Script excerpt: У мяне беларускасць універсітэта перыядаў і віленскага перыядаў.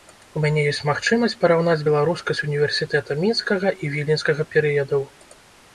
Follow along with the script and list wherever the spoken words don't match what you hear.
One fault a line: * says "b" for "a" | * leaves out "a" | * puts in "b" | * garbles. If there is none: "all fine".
* puts in "ёсць магчымасць параўнаць"
* says "мінскага" for "перыядаў"